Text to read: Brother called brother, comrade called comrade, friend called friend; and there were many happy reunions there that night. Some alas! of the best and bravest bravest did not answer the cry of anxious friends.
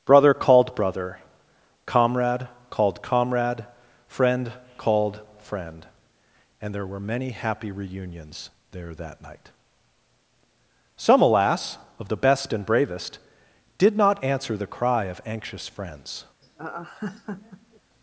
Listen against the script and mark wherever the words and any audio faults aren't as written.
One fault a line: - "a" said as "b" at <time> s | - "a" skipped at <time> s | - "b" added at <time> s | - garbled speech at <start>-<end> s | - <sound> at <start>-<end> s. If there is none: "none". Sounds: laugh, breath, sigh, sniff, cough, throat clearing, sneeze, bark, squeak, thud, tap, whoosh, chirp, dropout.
- "bravest" skipped at 13.2 s
- laugh at 16.4-17.8 s